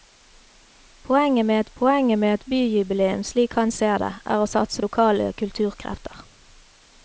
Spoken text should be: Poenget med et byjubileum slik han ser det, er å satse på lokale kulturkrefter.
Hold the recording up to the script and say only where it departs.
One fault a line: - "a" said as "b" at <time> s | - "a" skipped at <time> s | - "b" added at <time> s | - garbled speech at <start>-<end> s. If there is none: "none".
- "poenget med et" added at 1.7 s
- "på" skipped at 4.8 s